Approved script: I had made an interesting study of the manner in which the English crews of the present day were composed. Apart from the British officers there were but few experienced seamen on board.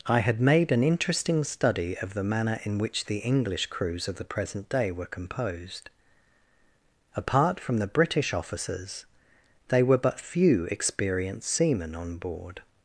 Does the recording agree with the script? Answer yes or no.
no